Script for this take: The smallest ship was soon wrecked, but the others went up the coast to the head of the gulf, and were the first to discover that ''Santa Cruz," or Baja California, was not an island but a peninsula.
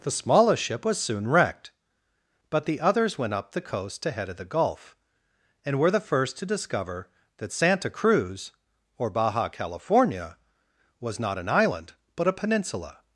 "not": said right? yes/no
yes